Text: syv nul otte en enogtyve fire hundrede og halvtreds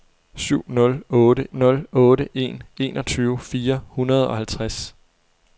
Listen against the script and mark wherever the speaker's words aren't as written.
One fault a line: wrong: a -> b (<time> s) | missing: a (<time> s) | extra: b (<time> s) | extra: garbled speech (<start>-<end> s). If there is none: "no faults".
extra: nul otte (1.5 s)